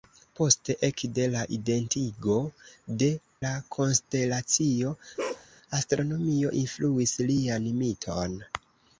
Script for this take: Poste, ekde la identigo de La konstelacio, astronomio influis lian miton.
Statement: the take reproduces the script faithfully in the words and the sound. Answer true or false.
false